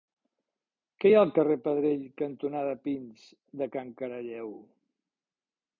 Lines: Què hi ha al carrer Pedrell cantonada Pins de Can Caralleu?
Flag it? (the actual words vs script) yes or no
no